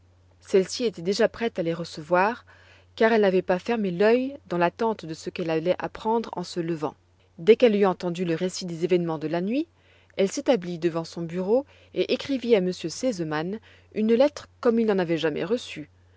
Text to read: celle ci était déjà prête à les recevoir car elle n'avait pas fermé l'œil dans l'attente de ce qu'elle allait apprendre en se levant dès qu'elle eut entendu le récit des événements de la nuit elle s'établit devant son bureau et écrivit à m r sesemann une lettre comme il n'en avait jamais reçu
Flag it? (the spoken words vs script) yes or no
no